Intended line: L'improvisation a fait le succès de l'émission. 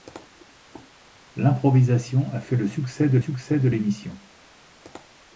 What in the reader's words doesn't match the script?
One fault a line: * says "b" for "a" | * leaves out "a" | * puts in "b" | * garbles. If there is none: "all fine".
* puts in "succès de"